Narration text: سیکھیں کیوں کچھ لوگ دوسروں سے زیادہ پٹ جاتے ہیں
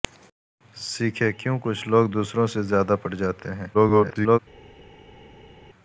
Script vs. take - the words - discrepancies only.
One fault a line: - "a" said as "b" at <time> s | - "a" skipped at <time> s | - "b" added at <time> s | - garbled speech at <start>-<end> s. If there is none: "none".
- garbled speech at 3.7-4.4 s